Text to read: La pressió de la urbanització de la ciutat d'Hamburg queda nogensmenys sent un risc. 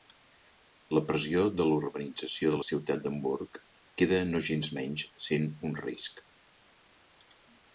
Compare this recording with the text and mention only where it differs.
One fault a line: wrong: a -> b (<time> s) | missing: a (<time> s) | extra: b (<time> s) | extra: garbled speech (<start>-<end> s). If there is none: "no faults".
no faults